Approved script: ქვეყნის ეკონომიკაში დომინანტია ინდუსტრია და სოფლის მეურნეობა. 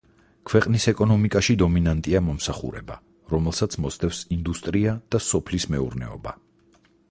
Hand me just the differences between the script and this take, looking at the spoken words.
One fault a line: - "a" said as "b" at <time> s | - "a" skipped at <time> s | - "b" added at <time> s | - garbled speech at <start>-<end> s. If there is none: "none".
- "მომსახურება რომელსაც მოსდევს" added at 2.3 s